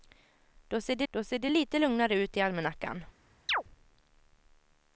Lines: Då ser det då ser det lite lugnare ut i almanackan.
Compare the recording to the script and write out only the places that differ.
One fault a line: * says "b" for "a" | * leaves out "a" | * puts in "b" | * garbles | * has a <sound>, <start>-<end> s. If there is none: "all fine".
* has a chirp, 3.5-3.6 s